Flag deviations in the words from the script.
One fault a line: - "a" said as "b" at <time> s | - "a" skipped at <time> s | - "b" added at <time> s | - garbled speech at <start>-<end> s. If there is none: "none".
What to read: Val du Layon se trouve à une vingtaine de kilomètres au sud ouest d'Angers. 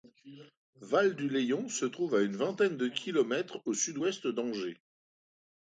none